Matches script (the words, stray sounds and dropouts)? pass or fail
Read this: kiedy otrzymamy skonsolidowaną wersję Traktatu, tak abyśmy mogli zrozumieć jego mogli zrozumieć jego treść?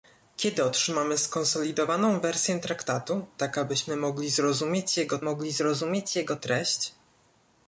pass